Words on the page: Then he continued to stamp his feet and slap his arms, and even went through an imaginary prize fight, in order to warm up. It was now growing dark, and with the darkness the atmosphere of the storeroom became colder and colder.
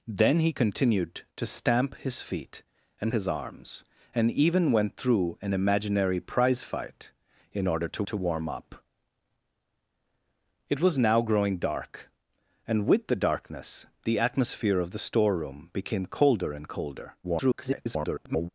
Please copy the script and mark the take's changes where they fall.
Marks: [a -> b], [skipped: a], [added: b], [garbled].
Then he continued to stamp his feet and [skipped: slap] his arms, and even went through an imaginary prize fight, in order to [added: to] warm up. It was now growing dark, and with the darkness the atmosphere of the storeroom became colder and colder. [garbled]